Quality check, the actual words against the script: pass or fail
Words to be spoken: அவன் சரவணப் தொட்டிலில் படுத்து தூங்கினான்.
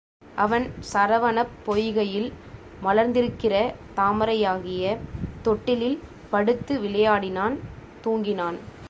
fail